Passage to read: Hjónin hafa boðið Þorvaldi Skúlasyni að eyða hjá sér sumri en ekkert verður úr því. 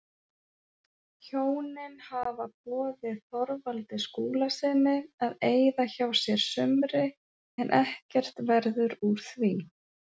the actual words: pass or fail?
pass